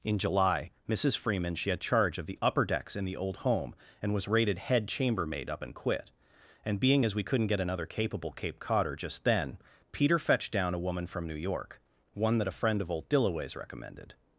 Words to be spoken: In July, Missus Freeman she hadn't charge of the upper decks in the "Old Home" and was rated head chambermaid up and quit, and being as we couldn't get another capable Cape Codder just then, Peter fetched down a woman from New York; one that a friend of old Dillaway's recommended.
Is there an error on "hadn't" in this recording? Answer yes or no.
yes